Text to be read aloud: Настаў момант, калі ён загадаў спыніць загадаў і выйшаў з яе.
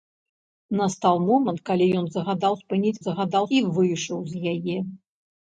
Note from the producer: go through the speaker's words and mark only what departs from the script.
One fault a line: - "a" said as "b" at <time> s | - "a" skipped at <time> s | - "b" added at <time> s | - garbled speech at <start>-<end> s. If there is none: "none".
none